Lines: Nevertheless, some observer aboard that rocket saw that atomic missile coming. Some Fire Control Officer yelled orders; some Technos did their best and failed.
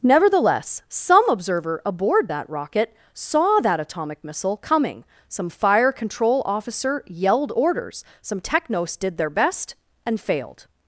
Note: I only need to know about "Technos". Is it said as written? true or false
true